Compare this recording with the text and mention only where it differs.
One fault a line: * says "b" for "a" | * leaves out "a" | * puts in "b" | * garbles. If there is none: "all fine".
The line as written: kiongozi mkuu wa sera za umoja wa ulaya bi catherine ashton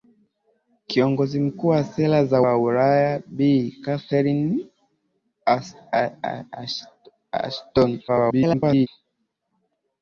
* leaves out "umoja"
* garbles